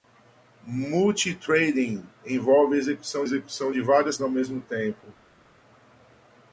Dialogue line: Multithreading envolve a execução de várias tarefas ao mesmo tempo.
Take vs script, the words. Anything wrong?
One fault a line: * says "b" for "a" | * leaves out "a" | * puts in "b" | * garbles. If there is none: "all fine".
* puts in "execução"
* leaves out "tarefas"